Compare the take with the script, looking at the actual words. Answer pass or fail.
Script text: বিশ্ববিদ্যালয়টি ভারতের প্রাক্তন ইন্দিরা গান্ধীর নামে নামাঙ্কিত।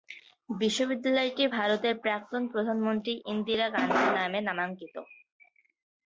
fail